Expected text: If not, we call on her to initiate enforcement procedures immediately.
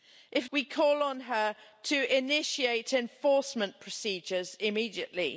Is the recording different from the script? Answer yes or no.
yes